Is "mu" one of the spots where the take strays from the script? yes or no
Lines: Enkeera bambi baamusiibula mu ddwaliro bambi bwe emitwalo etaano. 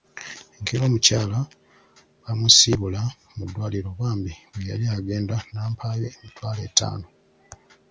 no